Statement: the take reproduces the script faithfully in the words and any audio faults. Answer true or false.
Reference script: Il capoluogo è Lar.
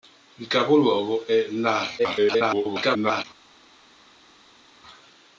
false